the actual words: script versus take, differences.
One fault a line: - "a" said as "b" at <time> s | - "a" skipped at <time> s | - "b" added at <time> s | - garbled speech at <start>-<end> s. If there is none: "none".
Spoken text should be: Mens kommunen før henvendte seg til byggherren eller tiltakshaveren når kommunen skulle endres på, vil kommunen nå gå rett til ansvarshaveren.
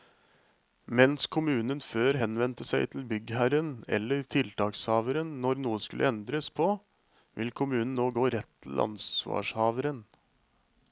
- "kommunen" said as "noe" at 5.6 s